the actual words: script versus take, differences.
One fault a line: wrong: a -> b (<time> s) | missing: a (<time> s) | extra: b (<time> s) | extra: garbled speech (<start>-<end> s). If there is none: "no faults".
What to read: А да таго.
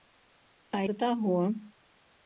no faults